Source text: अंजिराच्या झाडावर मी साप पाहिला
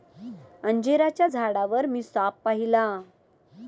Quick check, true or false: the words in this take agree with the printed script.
true